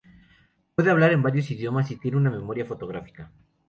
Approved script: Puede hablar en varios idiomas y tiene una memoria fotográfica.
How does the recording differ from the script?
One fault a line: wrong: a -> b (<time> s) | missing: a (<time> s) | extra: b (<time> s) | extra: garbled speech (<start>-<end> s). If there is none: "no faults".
no faults